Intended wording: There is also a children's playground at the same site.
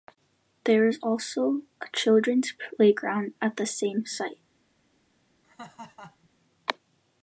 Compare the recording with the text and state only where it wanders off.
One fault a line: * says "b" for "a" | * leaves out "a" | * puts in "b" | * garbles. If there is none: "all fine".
all fine